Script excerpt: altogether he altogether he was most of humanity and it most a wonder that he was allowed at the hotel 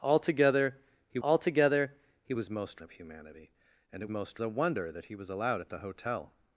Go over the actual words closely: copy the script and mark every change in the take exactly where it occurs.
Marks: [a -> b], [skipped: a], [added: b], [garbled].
altogether he altogether he was most of humanity and it most a wonder that he was allowed at the hotel